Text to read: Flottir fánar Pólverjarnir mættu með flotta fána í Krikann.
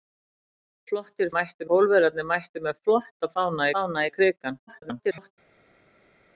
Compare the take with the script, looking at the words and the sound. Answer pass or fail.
fail